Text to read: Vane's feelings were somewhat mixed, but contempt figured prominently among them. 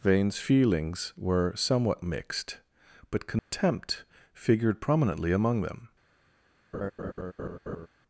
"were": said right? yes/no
yes